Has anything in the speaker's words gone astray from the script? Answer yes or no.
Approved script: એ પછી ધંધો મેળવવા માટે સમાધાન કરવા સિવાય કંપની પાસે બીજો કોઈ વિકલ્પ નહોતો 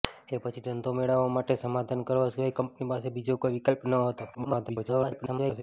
yes